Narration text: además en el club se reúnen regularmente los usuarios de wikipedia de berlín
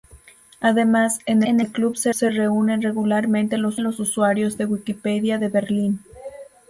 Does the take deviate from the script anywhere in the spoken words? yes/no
yes